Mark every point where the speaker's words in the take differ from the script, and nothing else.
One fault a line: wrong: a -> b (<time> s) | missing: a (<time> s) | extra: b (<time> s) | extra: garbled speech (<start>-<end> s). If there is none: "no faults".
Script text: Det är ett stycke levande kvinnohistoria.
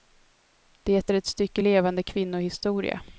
no faults